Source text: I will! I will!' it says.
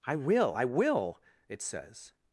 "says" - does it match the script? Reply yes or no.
yes